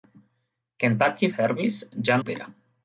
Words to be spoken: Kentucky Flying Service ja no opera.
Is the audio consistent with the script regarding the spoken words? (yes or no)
no